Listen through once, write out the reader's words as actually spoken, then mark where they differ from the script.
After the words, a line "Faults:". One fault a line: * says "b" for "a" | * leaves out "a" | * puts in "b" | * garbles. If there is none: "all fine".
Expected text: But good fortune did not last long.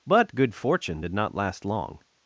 But good fortune did not last long.
Faults:
all fine